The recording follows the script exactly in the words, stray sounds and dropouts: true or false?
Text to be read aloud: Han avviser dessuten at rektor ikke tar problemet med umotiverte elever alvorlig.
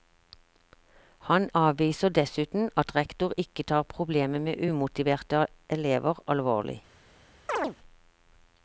false